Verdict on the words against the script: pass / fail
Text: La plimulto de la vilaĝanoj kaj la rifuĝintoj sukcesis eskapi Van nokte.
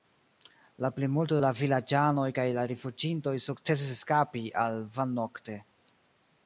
fail